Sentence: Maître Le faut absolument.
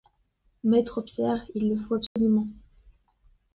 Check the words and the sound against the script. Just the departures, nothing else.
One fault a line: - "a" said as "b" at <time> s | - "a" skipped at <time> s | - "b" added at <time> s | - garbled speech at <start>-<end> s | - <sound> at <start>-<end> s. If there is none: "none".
- "Pierre il" added at 1.0 s
- dropout at 2.1-2.2 s